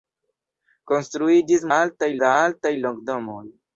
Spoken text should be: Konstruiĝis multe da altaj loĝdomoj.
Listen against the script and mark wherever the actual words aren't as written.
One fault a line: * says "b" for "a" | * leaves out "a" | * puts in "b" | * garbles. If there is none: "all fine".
* says "altaj" for "multe"